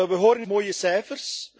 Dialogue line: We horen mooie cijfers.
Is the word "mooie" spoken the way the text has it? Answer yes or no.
yes